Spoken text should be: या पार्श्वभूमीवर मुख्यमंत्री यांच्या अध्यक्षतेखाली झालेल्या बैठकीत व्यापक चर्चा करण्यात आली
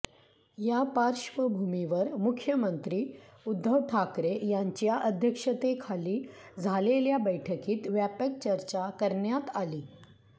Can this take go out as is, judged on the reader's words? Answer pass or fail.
fail